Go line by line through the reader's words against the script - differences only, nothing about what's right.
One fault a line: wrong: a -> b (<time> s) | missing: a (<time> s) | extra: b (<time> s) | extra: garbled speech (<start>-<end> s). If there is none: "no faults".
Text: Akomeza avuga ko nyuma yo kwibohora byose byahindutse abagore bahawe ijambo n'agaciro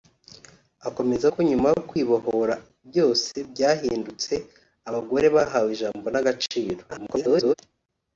missing: avuga (1.2 s)
extra: garbled speech (6.9-7.5 s)